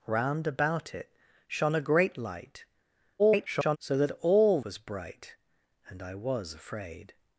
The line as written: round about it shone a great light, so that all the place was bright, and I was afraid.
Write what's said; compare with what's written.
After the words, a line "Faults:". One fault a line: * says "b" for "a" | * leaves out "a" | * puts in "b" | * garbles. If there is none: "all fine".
round about it shone a great light, [garbled] so that all was bright, and I was afraid.
Faults:
* garbles
* leaves out "the place"